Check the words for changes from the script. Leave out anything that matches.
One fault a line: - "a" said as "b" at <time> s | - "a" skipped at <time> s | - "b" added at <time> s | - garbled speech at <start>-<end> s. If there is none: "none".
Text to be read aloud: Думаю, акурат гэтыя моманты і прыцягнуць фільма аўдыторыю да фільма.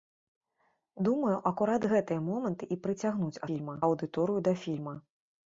none